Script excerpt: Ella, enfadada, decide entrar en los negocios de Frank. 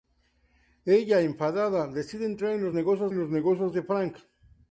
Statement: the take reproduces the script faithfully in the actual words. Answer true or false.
false